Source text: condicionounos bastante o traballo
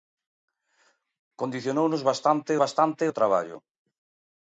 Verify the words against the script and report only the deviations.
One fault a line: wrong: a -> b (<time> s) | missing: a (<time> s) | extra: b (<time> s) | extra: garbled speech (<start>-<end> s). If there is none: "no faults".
extra: bastante (2.6 s)